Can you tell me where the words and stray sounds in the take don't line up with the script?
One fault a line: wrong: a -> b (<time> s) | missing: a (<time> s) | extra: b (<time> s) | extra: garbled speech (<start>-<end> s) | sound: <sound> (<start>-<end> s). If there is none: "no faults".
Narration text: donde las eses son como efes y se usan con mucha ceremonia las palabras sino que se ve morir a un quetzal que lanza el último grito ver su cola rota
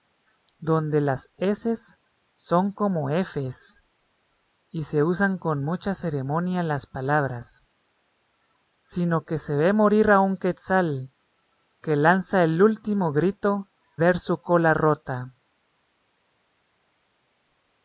no faults